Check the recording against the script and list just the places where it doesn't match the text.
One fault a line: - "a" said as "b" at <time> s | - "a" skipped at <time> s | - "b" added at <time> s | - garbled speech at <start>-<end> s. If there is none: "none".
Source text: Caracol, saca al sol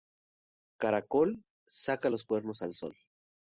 - "los cuernos" added at 2.1 s